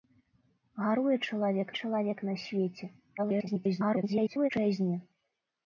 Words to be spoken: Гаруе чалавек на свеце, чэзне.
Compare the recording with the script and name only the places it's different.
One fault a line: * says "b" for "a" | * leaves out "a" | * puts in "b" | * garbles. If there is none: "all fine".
* puts in "чалавек"
* garbles